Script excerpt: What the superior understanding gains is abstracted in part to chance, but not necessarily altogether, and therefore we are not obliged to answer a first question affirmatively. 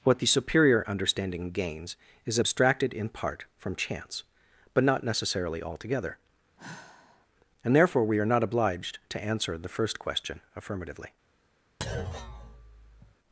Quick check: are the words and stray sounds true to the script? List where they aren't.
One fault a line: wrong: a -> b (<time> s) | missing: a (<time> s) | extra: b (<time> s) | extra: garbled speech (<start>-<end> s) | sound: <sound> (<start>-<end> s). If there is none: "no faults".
wrong: to -> from (3.6 s)
sound: sigh (6.6-7.3 s)
wrong: a -> the (9.6 s)
sound: thud (11.8-13.2 s)